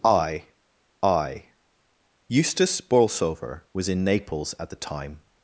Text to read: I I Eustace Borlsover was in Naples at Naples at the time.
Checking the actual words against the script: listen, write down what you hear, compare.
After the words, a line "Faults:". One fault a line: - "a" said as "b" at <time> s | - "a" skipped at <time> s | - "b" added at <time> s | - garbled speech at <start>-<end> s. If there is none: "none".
I I Eustace Borlsover was in Naples at the time.
Faults:
- "Naples at" skipped at 4.7 s